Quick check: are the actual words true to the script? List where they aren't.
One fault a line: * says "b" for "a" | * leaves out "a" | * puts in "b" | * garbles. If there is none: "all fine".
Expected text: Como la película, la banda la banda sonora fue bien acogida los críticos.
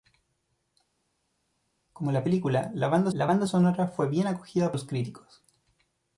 all fine